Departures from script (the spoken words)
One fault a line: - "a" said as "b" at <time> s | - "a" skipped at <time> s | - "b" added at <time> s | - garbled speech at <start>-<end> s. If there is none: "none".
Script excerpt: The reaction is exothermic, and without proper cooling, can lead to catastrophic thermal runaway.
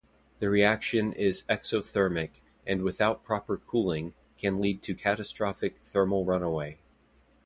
none